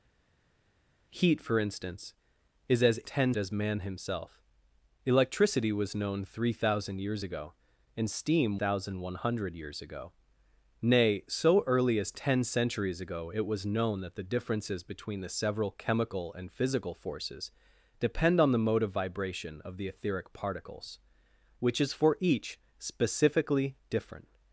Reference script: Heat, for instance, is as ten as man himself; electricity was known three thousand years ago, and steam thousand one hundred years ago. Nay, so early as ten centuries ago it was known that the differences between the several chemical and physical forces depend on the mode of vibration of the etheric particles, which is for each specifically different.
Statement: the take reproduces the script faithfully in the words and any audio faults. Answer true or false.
true